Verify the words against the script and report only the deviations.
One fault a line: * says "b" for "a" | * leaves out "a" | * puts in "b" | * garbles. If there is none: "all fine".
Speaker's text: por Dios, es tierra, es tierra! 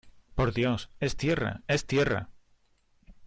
all fine